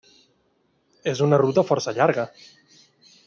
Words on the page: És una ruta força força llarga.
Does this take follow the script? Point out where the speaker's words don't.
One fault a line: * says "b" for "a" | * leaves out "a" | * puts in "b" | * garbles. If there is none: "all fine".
* leaves out "força"